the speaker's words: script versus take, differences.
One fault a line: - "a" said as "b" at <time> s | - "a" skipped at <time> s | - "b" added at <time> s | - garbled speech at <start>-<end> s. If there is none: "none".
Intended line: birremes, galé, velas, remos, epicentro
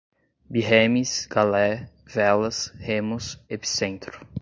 none